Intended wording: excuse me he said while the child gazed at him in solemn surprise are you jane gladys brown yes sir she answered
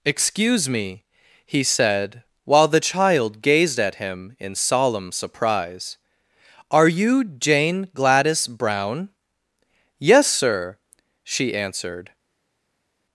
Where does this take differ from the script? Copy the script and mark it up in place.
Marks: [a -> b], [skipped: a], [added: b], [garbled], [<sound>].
excuse me he said while the child gazed at him in solemn surprise are you jane gladys brown yes sir she answered